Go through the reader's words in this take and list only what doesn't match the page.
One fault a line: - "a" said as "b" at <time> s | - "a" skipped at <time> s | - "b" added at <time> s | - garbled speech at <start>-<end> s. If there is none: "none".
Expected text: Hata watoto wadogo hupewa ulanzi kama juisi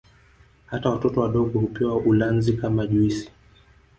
none